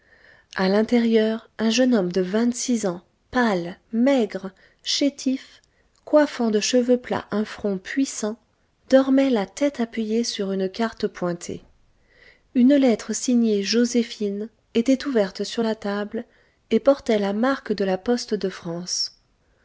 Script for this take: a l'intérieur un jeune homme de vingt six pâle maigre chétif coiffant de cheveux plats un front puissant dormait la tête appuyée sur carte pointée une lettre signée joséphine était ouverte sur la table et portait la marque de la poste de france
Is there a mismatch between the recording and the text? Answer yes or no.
yes